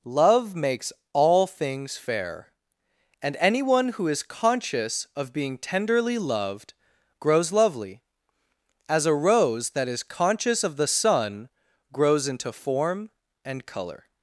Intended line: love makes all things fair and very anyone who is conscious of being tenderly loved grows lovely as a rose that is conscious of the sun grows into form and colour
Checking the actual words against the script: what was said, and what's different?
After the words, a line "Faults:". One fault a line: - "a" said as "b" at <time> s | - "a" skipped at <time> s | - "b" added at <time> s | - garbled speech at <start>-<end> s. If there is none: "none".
love makes all things fair and anyone who is conscious of being tenderly loved grows lovely as a rose that is conscious of the sun grows into form and colour
Faults:
- "very" skipped at 3.3 s